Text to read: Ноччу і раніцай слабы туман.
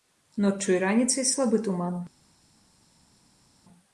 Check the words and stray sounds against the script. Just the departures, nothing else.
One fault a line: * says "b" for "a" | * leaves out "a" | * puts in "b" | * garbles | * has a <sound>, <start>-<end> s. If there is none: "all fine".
all fine